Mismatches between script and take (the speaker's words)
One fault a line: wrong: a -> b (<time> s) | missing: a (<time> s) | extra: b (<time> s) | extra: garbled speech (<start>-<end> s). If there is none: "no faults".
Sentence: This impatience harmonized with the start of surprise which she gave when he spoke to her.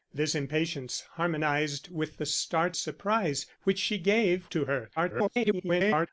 missing: of (2.8 s)
missing: when he spoke (4.5 s)
extra: garbled speech (5.0-6.1 s)